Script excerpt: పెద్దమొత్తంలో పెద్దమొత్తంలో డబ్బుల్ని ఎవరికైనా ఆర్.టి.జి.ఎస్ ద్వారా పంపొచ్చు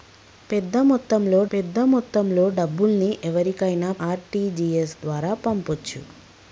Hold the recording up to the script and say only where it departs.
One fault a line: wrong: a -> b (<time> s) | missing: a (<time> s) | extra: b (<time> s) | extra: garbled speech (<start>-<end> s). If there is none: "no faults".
no faults